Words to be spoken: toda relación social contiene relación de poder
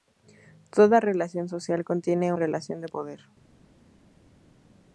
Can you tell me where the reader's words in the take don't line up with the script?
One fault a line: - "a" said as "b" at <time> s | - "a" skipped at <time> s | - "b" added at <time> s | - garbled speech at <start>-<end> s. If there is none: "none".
none